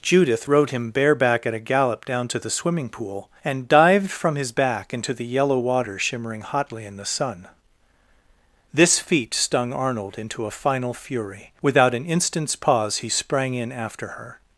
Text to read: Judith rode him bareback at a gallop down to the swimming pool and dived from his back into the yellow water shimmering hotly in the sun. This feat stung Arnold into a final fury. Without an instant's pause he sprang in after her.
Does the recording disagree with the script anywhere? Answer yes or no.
no